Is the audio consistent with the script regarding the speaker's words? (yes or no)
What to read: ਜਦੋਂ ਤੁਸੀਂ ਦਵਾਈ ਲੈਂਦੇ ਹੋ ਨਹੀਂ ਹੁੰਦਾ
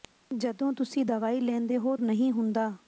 yes